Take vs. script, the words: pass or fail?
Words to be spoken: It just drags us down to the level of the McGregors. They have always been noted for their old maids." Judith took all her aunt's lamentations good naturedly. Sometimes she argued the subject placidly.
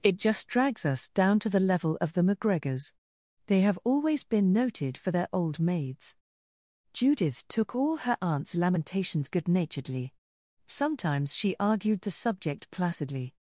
pass